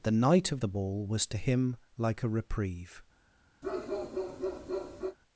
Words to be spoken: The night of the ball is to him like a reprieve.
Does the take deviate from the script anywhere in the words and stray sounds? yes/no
yes